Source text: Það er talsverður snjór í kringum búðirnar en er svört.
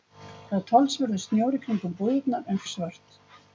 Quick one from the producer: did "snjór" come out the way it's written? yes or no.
yes